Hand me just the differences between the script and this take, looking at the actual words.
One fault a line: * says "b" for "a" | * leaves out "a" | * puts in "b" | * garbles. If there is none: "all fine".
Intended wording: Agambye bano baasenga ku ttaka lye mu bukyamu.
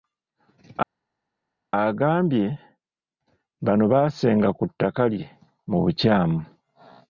all fine